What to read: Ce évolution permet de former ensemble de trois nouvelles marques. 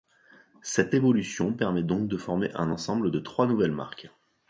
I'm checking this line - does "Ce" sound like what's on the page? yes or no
no